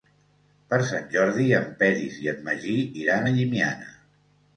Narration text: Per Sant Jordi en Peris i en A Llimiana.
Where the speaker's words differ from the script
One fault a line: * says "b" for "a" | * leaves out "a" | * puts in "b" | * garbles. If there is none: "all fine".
* puts in "Magí iran"